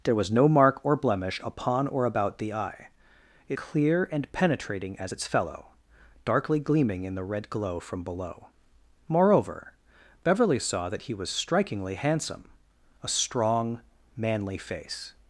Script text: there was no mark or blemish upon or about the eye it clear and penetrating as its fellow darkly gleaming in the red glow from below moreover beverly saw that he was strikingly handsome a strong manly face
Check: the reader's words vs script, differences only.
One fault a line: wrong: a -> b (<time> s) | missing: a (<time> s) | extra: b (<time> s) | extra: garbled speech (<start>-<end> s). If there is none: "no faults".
no faults